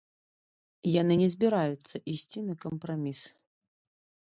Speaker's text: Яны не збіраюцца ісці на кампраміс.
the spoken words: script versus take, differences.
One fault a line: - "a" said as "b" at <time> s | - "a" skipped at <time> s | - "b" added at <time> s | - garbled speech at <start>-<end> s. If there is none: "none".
none